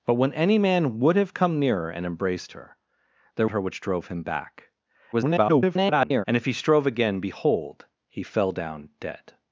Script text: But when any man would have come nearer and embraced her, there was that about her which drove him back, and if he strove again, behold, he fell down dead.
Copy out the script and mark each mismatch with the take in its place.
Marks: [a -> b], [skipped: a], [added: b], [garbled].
But when any man would have come nearer and embraced her, there [skipped: was that about] her which drove him back, [garbled] and if he strove again, behold, he fell down dead.